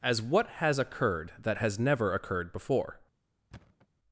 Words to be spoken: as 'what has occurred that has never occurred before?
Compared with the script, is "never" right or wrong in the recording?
right